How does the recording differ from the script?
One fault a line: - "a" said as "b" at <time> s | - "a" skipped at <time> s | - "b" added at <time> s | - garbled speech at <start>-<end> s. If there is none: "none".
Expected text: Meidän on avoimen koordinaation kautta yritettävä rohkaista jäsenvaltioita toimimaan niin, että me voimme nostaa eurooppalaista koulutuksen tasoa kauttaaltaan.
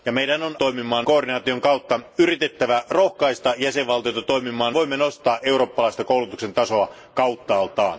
- "avoimen" said as "toimimaan" at 0.5 s
- "niin että me" skipped at 4.8 s